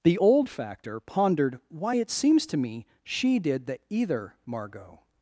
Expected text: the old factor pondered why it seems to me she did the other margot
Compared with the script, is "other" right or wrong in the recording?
wrong